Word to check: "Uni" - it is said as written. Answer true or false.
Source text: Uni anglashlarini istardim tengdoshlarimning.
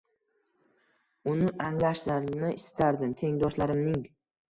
true